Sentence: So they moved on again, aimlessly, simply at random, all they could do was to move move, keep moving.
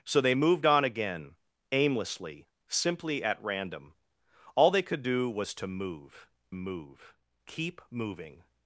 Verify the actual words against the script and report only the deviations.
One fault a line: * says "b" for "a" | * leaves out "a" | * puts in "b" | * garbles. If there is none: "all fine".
all fine